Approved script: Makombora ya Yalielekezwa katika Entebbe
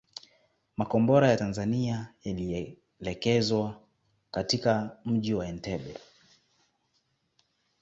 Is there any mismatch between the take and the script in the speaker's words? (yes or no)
yes